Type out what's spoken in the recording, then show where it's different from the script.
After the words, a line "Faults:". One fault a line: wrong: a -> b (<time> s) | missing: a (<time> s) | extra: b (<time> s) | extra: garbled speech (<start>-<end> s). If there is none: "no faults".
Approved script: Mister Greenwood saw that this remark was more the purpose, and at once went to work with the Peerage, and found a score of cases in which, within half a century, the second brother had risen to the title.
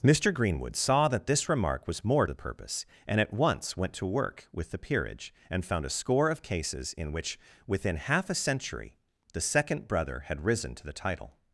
Mister Greenwood saw that this remark was more the purpose, and at once went to work with the Peerage, and found a score of cases in which, within half a century, the second brother had risen to the title.
Faults:
no faults